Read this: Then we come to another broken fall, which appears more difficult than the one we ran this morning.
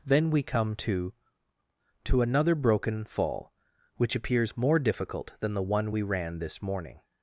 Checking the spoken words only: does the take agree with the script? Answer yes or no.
no